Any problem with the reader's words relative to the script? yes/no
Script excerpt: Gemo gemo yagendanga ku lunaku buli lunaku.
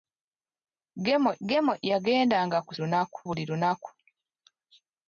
no